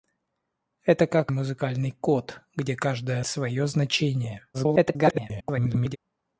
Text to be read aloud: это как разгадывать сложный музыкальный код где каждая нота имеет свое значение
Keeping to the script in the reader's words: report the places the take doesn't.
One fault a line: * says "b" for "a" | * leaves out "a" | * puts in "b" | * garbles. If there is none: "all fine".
* leaves out "разгадывать сложный"
* leaves out "нота имеет"
* garbles